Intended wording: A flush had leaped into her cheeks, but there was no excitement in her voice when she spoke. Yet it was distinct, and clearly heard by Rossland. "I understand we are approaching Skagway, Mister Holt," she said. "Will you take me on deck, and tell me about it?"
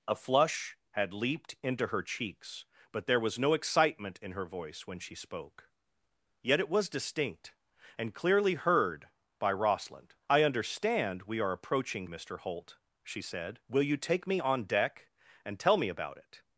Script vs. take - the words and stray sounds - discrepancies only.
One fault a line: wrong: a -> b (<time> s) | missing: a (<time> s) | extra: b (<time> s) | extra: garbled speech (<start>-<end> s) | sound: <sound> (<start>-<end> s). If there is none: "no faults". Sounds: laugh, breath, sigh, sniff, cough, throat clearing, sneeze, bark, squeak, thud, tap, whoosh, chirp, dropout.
missing: Skagway (12.1 s)